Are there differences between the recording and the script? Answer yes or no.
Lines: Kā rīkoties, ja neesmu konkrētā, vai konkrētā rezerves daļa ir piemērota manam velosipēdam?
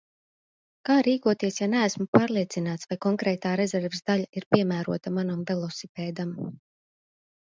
yes